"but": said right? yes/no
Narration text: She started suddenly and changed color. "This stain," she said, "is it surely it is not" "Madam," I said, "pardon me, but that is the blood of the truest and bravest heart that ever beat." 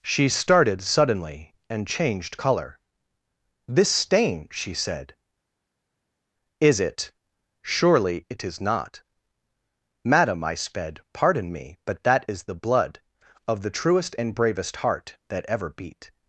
yes